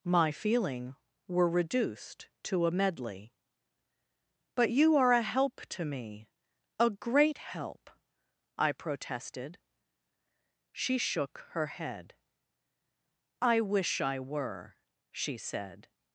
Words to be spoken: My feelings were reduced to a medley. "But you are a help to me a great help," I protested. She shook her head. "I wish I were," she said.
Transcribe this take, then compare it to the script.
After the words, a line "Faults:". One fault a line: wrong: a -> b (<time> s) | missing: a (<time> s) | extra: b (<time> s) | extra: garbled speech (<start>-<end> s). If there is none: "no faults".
My feeling were reduced to a medley. "But you are a help to me a great help," I protested. She shook her head. "I wish I were," she said.
Faults:
wrong: feelings -> feeling (0.3 s)